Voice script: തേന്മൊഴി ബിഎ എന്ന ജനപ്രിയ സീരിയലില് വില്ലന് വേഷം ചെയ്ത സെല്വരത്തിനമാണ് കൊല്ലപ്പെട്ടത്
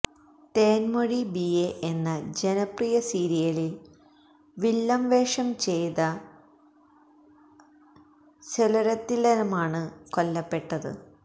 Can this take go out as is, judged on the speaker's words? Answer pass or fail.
pass